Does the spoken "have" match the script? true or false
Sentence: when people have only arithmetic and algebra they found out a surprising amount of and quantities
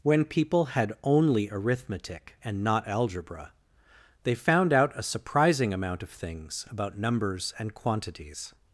false